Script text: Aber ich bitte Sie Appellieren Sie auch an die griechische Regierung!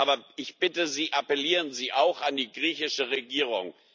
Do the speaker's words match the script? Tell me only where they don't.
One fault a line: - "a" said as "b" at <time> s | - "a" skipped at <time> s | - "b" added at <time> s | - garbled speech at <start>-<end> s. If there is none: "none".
none